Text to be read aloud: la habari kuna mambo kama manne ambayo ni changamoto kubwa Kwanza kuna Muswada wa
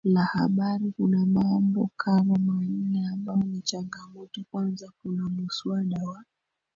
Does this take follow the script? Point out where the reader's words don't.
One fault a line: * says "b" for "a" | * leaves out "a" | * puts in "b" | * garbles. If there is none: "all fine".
* leaves out "kubwa"